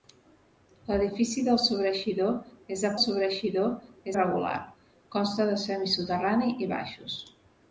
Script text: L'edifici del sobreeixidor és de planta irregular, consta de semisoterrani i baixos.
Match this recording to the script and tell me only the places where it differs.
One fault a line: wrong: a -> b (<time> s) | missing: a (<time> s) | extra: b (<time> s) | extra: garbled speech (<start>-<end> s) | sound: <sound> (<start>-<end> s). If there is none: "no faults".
wrong: planta -> sobreeixidor (3.0 s)